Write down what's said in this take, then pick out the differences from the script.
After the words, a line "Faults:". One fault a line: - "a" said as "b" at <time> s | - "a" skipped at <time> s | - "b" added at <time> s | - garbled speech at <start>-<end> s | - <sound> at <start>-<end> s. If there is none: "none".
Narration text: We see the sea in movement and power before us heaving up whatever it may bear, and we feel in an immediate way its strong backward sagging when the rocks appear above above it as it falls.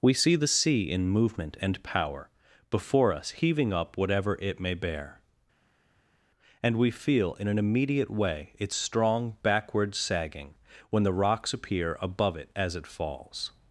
We see the sea in movement and power before us heaving up whatever it may bear, and we feel in an immediate way its strong backward sagging when the rocks appear above it as it falls.
Faults:
- "above" skipped at 12.4 s